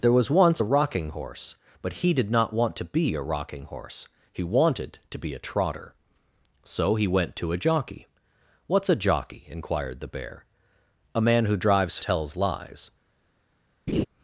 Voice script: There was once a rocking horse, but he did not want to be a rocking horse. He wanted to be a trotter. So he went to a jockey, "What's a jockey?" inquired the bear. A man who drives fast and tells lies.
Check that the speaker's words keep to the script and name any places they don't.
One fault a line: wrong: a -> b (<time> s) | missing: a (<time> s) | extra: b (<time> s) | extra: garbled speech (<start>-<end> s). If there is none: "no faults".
missing: fast and (12.0 s)